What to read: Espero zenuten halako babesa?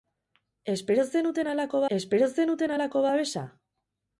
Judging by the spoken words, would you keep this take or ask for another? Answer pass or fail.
fail